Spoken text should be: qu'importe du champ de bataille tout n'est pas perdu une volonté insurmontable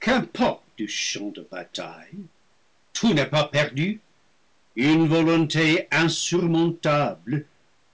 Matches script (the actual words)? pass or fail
pass